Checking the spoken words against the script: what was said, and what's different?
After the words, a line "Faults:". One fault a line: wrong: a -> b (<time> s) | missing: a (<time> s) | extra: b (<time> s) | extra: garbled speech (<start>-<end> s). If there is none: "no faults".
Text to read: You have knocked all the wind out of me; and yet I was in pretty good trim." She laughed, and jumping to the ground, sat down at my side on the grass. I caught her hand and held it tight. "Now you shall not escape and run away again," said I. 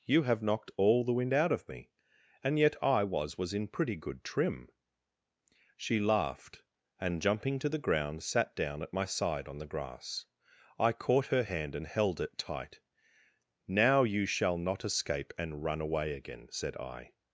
You have knocked all the wind out of me; and yet I was was in pretty good trim." She laughed, and jumping to the ground, sat down at my side on the grass. I caught her hand and held it tight. "Now you shall not escape and run away again," said I.
Faults:
extra: was (3.4 s)